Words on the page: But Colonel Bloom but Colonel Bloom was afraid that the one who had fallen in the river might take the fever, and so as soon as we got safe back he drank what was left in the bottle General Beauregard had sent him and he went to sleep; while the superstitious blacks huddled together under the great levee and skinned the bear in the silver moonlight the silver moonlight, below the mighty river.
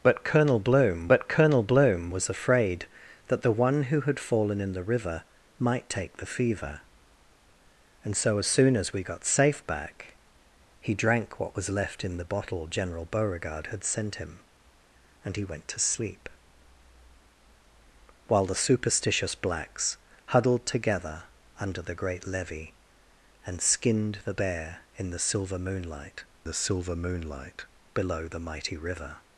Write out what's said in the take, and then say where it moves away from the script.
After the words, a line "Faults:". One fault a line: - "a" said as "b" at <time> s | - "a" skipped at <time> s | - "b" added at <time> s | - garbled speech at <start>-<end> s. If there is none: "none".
But Colonel Bloom but Colonel Bloom was afraid that the one who had fallen in the river might take the fever, and so as soon as we got safe back he drank what was left in the bottle General Beauregard had sent him and he went to sleep; while the superstitious blacks huddled together under the great levee and skinned the bear in the silver moonlight the silver moonlight, below the mighty river.
Faults:
none